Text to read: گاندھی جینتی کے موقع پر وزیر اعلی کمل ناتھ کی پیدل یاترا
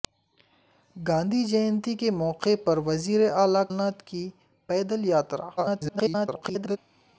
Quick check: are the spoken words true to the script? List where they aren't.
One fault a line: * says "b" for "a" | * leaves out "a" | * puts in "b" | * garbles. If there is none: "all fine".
* leaves out "کمل"
* garbles